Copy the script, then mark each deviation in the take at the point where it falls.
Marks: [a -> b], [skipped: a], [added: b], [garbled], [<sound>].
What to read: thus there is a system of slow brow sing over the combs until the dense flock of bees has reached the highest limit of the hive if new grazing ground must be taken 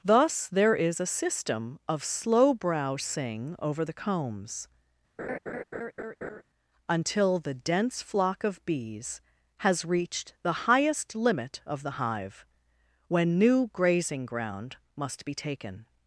thus there is a system of slow brow sing over the combs [laugh] until the dense flock of bees has reached the highest limit of the hive [if -> when] new grazing ground must be taken